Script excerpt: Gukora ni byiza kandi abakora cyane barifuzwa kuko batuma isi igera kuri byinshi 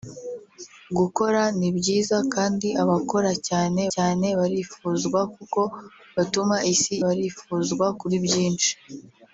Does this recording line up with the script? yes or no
no